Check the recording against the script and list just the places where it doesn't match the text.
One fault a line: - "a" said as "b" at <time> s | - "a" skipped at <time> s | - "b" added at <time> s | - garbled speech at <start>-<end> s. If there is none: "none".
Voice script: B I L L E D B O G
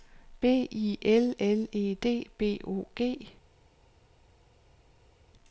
none